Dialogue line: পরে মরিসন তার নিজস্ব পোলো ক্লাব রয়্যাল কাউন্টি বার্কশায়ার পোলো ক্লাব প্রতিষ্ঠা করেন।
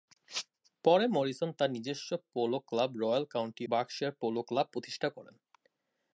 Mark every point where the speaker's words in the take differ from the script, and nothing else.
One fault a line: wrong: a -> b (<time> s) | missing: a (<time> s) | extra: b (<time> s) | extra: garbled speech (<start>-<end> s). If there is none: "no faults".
no faults